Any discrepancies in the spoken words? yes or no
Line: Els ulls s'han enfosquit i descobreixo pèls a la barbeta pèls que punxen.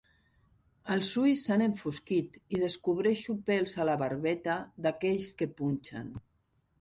yes